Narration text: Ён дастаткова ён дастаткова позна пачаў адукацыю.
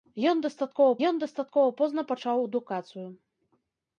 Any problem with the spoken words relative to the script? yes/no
no